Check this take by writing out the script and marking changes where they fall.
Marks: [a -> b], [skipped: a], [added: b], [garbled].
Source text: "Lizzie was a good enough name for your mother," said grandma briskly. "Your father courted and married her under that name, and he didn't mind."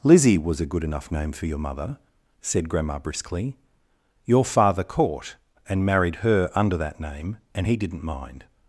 "Lizzie was a good enough name for your mother," said grandma briskly. "Your father [courted -> court] and married her under that name, and he didn't mind."